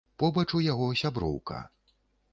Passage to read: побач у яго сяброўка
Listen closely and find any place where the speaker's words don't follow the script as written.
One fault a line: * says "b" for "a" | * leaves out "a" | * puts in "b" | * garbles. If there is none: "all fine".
all fine